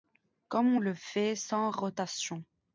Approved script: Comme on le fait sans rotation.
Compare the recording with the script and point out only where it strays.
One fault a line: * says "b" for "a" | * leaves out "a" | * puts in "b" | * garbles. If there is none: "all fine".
all fine